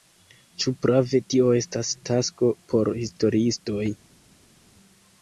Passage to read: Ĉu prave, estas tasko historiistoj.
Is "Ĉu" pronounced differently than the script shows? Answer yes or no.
no